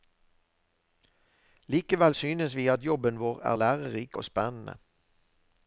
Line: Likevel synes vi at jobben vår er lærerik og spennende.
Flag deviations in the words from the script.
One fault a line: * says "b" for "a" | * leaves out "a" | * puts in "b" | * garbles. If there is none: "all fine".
all fine